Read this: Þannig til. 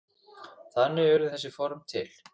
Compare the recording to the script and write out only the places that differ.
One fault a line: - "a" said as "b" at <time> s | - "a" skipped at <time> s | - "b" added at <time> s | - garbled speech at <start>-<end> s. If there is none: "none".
- "urðu þessi form" added at 1.2 s